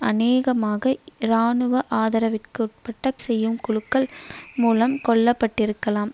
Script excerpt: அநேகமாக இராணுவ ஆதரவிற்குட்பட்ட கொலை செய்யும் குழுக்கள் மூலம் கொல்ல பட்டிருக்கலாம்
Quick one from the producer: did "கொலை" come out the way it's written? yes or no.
no